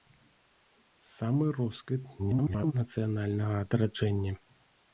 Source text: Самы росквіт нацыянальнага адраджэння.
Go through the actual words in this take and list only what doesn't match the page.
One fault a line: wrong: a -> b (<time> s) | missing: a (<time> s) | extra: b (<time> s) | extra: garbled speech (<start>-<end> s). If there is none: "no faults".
extra: garbled speech (2.2-2.7 s)